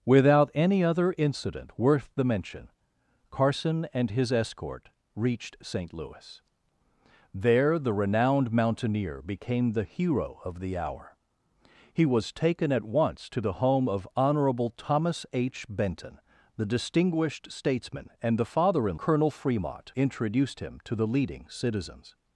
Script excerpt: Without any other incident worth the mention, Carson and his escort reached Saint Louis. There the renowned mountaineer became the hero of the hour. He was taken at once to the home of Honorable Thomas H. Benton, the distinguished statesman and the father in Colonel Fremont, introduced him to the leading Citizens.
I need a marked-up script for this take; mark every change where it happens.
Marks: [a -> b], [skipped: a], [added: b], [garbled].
Without any other incident worth the mention, Carson and his escort reached Saint Louis. There the renowned mountaineer became the hero of the hour. He was taken at once to the home of Honorable Thomas H. Benton, the distinguished statesman and the father in Colonel Fremont, introduced him to the leading Citizens.